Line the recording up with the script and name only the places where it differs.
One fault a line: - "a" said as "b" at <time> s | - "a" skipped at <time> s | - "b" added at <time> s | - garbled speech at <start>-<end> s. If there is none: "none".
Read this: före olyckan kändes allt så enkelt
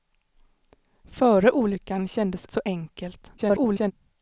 - "allt" skipped at 2.5 s
- garbled speech at 3.4-3.9 s